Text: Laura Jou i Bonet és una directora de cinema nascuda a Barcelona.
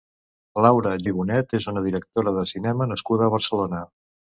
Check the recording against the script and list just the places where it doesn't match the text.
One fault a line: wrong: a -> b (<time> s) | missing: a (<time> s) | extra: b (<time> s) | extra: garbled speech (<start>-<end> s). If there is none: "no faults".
missing: Jou (0.9 s)